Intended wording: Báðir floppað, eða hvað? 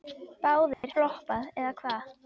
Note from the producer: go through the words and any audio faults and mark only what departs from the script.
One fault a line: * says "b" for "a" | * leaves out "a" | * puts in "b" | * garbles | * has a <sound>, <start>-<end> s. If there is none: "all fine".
* has a dropout, 0.7-0.8 s